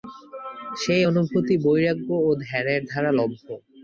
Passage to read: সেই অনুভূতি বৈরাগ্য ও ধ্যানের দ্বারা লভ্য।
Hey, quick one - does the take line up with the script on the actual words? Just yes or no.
yes